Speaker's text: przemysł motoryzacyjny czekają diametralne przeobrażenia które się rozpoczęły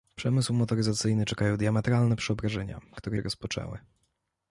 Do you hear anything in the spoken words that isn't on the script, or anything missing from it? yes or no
no